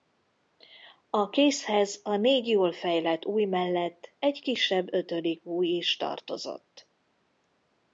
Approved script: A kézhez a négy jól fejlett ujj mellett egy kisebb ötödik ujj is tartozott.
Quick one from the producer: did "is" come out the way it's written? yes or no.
yes